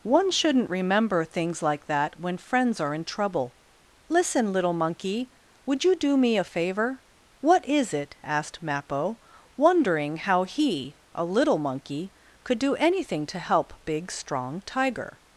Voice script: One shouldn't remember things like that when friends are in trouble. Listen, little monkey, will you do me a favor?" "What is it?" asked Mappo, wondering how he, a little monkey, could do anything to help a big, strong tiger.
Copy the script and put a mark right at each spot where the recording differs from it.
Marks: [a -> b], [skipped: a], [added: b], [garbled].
One shouldn't remember things like that when friends are in trouble. Listen, little monkey, [will -> would] you do me a favor?" "What is it?" asked Mappo, wondering how he, a little monkey, could do anything to help [skipped: a] big, strong tiger.